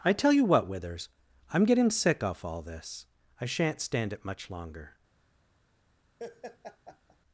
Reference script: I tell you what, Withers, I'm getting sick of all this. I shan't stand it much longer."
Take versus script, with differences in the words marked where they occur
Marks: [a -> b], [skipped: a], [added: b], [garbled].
I tell you what, Withers, I'm getting sick [of -> off] all this. I shan't stand it much longer."